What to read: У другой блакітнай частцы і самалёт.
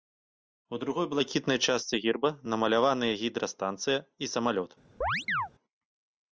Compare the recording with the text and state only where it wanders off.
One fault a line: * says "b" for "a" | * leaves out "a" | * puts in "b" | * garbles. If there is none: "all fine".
* puts in "герба намаляваныя гідрастанцыя"